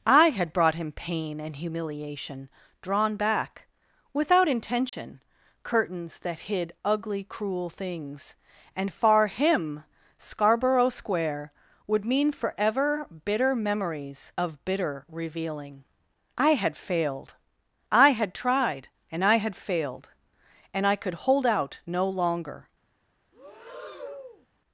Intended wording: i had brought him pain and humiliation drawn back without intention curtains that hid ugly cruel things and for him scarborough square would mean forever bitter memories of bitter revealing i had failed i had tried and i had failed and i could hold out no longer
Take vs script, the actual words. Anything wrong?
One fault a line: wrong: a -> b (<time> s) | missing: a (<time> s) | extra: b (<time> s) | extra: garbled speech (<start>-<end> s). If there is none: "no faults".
wrong: for -> far (8.9 s)